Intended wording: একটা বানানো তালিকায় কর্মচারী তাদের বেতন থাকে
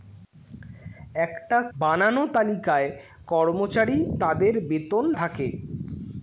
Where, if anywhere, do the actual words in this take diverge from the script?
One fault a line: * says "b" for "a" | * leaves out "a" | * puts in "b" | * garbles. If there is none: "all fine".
all fine